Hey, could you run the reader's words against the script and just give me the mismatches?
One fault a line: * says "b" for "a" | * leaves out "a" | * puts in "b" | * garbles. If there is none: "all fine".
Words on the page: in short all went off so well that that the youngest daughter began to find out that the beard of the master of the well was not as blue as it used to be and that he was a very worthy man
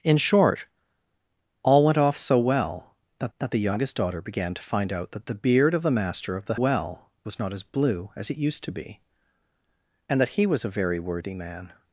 all fine